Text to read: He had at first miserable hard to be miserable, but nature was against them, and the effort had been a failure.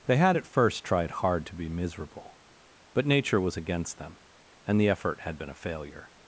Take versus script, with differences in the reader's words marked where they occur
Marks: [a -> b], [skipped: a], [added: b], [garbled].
[He -> They] had at first [miserable -> tried] hard to be miserable, but nature was against them, and the effort had been a failure.